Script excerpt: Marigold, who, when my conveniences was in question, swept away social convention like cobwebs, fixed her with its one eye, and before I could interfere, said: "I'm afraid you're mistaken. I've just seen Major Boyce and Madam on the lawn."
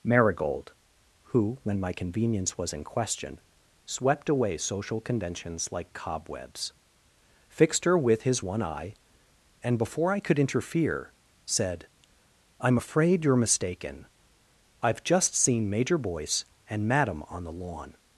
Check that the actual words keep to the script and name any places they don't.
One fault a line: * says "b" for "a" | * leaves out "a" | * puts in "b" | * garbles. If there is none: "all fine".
* says "convenience" for "conveniences"
* says "conventions" for "convention"
* says "his" for "its"